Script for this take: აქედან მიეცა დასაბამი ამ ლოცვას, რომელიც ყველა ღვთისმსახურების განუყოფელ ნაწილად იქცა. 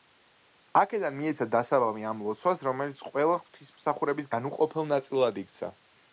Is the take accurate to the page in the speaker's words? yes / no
yes